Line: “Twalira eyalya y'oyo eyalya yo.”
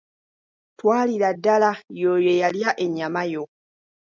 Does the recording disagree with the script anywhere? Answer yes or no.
yes